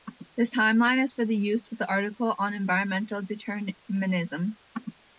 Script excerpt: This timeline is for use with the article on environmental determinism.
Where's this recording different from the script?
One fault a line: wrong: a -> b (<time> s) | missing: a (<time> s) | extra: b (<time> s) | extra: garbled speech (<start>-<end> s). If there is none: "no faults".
no faults